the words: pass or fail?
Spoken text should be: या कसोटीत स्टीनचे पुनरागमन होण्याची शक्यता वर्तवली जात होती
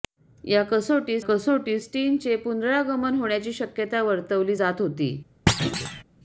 fail